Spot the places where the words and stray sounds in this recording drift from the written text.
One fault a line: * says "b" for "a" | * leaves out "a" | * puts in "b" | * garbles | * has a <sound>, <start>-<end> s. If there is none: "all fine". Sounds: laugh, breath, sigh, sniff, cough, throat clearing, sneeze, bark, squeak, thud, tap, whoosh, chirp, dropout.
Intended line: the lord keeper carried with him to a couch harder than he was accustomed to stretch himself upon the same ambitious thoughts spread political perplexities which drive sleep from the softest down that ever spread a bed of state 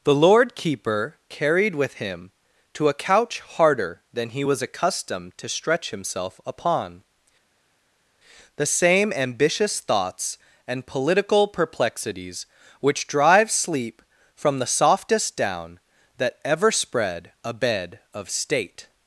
* says "and" for "spread"